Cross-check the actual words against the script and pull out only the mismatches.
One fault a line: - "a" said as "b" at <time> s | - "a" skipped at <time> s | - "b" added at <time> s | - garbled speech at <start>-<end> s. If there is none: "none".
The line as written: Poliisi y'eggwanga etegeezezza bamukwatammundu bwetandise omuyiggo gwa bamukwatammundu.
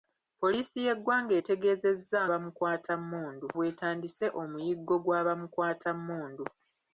none